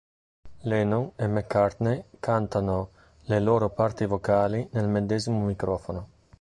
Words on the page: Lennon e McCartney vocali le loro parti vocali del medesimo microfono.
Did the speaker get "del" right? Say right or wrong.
wrong